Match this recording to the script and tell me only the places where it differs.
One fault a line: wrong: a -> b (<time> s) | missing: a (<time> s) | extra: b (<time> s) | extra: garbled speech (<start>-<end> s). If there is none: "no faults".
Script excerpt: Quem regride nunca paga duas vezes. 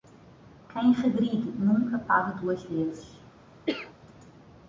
no faults